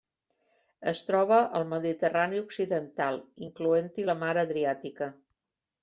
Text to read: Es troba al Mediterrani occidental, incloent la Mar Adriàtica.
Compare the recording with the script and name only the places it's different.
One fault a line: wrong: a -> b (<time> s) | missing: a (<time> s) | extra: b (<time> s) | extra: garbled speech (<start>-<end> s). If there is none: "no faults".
extra: hi (4.0 s)